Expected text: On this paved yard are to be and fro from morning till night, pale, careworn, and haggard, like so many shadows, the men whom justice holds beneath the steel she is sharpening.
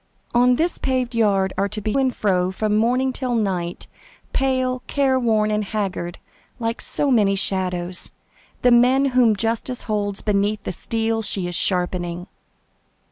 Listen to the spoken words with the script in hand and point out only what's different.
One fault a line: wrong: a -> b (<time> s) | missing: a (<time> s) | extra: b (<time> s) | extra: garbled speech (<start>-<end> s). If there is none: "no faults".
no faults